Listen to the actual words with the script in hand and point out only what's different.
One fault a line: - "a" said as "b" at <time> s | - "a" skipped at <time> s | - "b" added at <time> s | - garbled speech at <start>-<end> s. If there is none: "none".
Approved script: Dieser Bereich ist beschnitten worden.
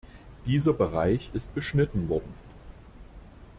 none